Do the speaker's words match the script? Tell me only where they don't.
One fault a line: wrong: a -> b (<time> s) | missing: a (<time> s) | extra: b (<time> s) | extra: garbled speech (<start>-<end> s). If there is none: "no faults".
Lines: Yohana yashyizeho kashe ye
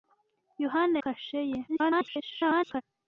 missing: yashyizeho (1.0 s)
extra: garbled speech (1.7-2.8 s)